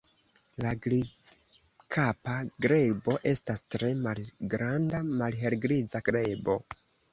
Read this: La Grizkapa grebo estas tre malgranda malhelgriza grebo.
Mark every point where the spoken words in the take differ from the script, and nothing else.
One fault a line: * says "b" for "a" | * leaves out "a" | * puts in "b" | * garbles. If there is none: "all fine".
all fine